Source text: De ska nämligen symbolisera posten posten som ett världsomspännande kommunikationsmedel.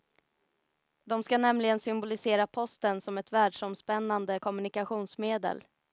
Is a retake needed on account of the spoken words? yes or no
yes